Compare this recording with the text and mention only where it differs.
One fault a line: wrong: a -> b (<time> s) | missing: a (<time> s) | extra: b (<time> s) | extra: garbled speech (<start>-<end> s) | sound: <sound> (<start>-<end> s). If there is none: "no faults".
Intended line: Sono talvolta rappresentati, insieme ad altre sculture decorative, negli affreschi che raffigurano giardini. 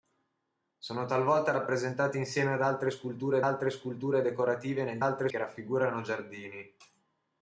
extra: altre sculture (3.4 s)
wrong: affreschi -> altre (5.0 s)